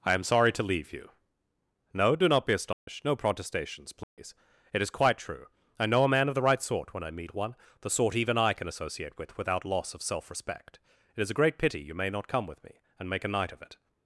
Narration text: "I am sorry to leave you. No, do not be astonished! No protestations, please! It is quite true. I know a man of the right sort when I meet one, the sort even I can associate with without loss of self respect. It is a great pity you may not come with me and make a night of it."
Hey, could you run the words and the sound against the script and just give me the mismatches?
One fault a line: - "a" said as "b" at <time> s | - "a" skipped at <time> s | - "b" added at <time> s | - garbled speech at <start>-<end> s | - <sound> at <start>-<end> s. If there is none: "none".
- dropout at 2.7-2.9 s
- dropout at 4.0-4.2 s